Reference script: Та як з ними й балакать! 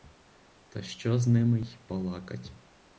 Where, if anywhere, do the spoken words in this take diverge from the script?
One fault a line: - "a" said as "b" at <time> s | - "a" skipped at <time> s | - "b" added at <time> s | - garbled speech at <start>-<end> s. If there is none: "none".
- "як" said as "що" at 0.8 s